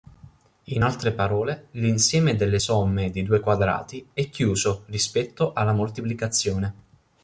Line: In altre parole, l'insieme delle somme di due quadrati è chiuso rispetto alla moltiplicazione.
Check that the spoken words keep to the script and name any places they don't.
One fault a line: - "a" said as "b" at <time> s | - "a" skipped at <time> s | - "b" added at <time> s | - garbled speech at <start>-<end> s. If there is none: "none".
none